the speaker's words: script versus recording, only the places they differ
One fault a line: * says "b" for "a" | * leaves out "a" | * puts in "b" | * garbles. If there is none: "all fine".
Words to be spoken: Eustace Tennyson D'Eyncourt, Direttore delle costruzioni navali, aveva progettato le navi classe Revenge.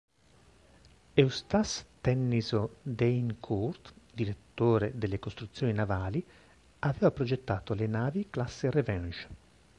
all fine